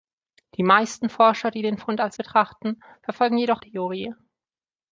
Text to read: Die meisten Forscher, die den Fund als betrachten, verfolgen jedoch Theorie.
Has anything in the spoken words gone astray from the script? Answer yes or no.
no